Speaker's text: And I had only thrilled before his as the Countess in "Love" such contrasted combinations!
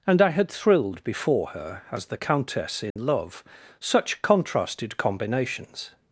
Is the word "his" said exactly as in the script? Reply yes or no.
no